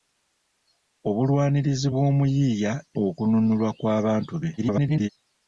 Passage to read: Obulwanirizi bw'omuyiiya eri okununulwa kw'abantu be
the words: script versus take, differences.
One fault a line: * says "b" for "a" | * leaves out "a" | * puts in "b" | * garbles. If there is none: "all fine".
* leaves out "eri"
* garbles